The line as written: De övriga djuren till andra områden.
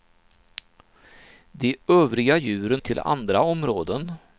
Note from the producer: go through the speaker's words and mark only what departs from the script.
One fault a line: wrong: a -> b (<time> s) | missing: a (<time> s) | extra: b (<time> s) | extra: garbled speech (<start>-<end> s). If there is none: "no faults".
no faults